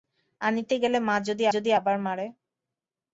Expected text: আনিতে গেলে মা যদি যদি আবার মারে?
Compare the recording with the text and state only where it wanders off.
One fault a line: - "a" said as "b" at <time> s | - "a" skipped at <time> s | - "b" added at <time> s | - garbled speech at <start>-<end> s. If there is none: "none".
none